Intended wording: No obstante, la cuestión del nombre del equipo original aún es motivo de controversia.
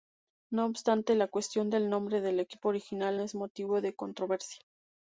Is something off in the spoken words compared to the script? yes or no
yes